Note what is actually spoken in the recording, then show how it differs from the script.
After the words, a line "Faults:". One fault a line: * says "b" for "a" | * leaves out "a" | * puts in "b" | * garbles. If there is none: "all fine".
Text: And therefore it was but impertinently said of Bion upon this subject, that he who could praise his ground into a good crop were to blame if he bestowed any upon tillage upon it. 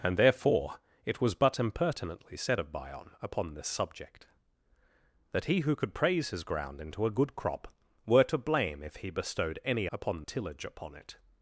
And therefore it was but impertinently said of Bion upon this subject, that he who could praise his ground into a good crop were to blame if he bestowed any upon tillage upon it.
Faults:
all fine